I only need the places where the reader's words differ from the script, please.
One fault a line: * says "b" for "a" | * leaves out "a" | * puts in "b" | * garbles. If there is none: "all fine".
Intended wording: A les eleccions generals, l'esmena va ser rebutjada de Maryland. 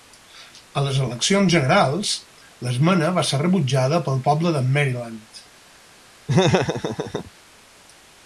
* puts in "pel poble"